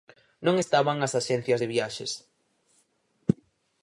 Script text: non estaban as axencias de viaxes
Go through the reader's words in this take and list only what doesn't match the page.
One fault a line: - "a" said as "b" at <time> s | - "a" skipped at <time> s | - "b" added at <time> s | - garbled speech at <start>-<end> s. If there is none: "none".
none